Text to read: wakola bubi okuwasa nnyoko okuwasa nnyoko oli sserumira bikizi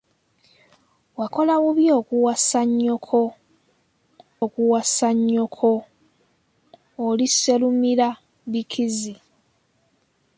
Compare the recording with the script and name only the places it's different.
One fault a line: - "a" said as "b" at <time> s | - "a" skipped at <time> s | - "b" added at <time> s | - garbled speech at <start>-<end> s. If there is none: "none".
none